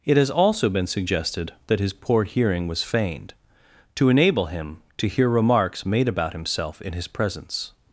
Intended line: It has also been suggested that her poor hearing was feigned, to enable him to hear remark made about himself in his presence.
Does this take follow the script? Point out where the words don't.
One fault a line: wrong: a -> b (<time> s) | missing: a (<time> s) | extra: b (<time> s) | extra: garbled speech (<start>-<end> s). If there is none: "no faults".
wrong: her -> his (1.8 s)
wrong: remark -> remarks (5.3 s)